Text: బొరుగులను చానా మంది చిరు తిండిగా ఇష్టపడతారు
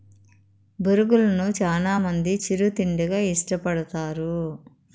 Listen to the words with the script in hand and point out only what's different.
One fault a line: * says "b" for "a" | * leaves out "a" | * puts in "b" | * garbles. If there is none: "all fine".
all fine